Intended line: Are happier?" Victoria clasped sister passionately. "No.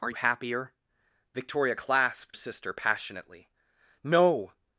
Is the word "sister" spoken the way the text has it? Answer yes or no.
yes